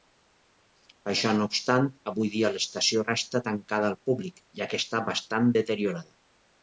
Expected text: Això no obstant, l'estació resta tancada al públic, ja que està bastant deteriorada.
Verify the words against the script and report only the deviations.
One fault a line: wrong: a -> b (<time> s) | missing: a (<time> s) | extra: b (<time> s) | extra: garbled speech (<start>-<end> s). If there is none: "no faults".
extra: avui dia (2.1 s)